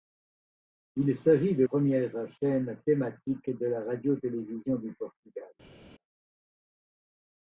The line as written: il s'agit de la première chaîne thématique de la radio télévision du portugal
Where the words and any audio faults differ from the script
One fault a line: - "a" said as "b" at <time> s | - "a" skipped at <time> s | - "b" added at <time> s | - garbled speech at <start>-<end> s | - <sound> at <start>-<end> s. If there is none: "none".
- "la" skipped at 1.6 s